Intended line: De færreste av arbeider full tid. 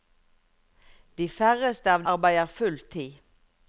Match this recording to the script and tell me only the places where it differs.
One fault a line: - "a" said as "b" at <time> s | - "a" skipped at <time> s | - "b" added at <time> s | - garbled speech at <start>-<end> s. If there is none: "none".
none